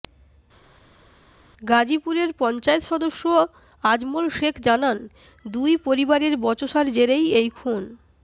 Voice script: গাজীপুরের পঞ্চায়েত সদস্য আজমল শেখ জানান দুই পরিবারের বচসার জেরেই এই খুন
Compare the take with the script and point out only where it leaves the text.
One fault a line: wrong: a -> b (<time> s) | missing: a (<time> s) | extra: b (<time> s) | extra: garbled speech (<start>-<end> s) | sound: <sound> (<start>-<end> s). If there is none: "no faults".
no faults